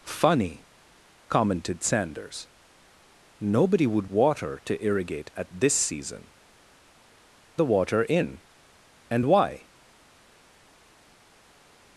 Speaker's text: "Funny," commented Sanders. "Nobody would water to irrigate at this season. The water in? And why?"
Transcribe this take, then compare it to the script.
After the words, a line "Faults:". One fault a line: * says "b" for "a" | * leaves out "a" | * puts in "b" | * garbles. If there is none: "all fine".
"Funny," commented Sanders. "Nobody would water to irrigate at this season. The water in? And why?"
Faults:
all fine